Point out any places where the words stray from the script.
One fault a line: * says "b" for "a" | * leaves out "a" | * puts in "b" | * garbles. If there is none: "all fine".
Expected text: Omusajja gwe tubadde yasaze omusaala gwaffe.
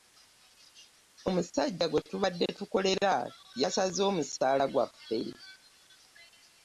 * puts in "tukolera"